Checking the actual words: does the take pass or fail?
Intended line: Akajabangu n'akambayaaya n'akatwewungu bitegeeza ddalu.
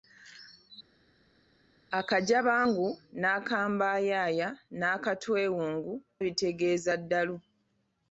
pass